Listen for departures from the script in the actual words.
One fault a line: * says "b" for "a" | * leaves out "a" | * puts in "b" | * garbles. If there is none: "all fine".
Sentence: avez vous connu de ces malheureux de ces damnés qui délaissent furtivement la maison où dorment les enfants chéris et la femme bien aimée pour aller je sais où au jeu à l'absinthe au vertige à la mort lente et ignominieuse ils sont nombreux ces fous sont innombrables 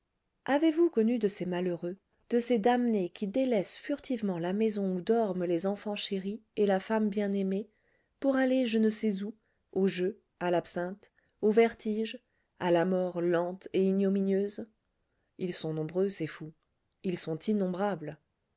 * puts in "ne"
* puts in "ils"